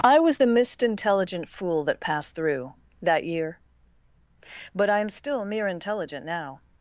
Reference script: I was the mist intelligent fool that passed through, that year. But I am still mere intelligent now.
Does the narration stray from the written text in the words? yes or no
no